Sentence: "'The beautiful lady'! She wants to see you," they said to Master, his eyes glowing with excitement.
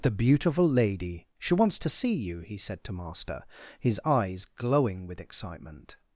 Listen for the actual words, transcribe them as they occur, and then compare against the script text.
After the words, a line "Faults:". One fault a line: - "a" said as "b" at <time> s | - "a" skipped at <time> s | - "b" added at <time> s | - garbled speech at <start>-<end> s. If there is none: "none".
"'The beautiful lady'! She wants to see you," he said to Master, his eyes glowing with excitement.
Faults:
- "they" said as "he" at 2.4 s